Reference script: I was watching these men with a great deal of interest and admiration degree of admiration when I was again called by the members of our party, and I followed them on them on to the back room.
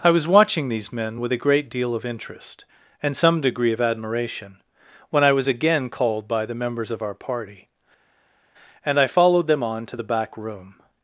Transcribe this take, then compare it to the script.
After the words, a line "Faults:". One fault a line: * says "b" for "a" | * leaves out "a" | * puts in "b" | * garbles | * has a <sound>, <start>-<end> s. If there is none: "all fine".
I was watching these men with a great deal of interest and some degree of admiration when I was again called by the members of our party, and I followed them on to the back room.
Faults:
* says "some" for "admiration"
* leaves out "them on"